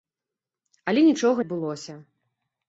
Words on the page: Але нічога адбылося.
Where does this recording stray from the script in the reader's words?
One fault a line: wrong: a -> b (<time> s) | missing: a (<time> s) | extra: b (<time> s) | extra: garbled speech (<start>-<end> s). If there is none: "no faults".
no faults